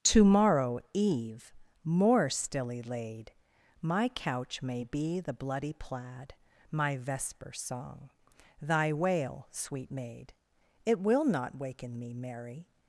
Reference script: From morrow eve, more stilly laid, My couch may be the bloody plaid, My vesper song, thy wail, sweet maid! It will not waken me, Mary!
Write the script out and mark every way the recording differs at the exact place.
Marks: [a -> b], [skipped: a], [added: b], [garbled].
[From -> To] morrow eve, more stilly laid, My couch may be the bloody plaid, My vesper song, thy wail, sweet maid! It will not waken me, Mary!